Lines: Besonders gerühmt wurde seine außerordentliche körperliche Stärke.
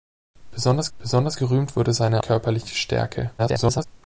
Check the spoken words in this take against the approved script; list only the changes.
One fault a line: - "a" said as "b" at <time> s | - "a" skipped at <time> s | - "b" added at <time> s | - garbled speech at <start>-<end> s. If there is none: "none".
- "besonders" added at 1.0 s
- "außerordentliche" skipped at 2.2 s
- garbled speech at 3.4-3.9 s